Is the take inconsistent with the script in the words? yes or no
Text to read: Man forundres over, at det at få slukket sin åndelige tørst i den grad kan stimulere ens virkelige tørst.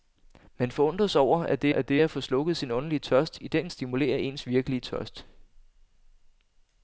yes